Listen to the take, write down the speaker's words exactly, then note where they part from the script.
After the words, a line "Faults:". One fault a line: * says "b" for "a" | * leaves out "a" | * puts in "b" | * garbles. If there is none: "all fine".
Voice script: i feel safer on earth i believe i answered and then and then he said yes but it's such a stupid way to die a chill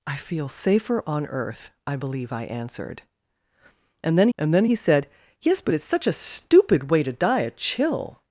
i feel safer on earth i believe i answered and then and then he said yes but it's such a stupid way to die a chill
Faults:
all fine